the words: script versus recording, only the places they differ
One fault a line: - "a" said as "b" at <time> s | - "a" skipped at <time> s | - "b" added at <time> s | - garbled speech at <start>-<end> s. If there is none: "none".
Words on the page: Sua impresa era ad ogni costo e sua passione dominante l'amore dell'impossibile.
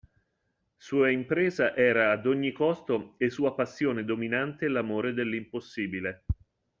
none